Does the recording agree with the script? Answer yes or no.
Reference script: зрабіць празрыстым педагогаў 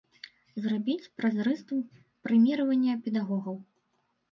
no